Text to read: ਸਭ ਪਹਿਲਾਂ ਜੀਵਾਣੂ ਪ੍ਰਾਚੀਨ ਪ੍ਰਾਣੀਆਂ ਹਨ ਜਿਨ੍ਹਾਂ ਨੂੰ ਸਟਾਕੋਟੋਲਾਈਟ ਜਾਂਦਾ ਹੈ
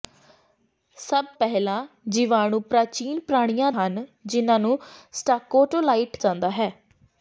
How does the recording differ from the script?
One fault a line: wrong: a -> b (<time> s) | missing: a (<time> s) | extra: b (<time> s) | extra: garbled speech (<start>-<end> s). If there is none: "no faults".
no faults